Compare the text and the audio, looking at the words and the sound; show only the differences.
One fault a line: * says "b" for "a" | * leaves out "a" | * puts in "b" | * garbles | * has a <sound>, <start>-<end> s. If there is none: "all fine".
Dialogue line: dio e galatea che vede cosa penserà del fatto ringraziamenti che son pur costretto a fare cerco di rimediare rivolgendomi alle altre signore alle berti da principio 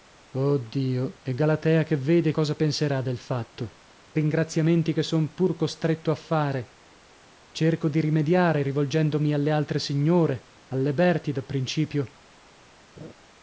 * has a laugh, 13.0-13.1 s